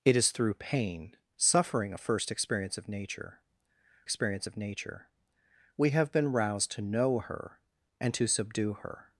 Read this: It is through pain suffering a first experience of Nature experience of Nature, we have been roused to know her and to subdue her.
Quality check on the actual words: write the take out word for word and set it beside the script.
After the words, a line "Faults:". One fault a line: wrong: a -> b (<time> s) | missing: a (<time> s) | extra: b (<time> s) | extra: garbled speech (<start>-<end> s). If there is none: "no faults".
It is through pain suffering a first experience of Nature experience of Nature, we have been roused to know her and to subdue her.
Faults:
no faults